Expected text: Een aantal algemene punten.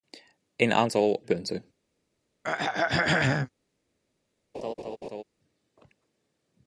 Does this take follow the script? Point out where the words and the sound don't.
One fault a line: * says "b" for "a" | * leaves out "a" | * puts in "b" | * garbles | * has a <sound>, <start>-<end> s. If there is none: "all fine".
* leaves out "algemene"
* has a throat clearing, 2.4-3.5 s
* has a laugh, 4.5-5.2 s